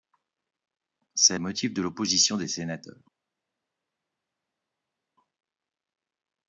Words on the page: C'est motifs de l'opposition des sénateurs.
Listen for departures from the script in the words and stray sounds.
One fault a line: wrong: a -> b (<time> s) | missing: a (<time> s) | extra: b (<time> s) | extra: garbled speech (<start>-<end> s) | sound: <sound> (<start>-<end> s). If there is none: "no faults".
no faults